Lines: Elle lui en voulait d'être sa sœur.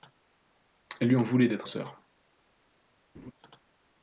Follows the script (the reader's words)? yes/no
no